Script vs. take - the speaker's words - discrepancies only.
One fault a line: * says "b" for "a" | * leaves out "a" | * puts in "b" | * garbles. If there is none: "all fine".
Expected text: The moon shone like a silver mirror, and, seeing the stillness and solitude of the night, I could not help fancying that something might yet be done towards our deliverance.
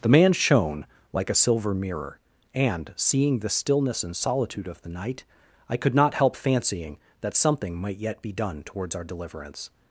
* says "man" for "moon"